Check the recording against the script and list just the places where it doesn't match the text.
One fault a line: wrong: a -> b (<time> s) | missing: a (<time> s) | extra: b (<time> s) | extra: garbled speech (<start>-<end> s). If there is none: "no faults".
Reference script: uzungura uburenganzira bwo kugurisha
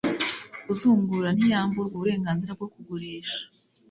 extra: ntiyamburwa (1.3 s)